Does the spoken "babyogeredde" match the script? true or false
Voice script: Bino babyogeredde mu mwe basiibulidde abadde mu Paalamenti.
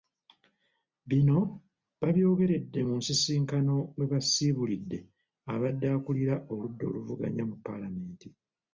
true